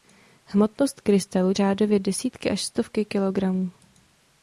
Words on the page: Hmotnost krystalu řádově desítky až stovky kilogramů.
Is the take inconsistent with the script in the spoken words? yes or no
no